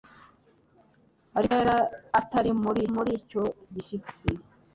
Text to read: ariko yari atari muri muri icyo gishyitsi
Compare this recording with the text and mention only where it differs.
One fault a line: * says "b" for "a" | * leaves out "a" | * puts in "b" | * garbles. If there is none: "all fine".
all fine